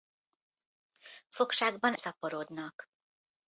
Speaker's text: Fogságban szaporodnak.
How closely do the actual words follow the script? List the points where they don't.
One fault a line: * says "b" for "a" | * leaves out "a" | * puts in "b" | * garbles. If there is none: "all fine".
all fine